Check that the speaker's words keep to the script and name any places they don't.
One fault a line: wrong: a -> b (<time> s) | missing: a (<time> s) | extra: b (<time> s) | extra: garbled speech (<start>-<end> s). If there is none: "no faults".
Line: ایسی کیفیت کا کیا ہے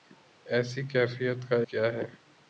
no faults